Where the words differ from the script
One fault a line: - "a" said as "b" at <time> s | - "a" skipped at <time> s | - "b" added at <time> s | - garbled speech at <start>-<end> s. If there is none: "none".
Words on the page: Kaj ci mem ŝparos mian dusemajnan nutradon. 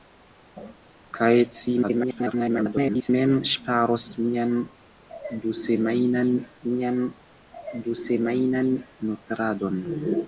- garbled speech at 1.8-3.1 s
- "mian dusemajnan" added at 6.7 s